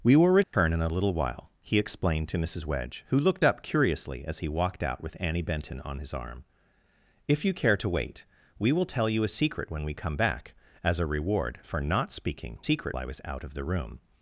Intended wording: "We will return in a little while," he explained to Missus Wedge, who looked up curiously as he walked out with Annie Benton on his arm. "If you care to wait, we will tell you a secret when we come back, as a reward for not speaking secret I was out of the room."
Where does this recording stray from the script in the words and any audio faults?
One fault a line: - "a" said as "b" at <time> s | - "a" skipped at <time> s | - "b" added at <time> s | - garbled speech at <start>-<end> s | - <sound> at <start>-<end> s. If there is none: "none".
- dropout at 0.4-0.5 s